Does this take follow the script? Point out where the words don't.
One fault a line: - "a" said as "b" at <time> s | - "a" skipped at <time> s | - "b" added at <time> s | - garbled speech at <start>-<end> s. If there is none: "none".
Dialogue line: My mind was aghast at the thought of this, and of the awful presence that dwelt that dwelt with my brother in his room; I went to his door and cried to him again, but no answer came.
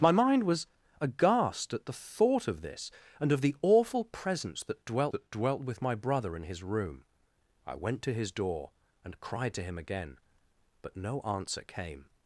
none